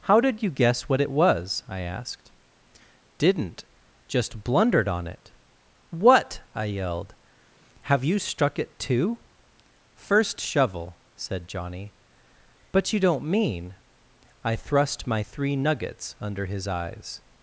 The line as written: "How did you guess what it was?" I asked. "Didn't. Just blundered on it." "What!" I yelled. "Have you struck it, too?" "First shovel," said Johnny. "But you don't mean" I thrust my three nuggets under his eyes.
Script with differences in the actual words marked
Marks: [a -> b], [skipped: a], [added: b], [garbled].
"How did you guess what it was?" I asked. "Didn't. Just blundered on it." "What!" I yelled. "Have you struck it, too?" "First shovel," said Johnny. "But you don't mean" I thrust my three nuggets under his eyes.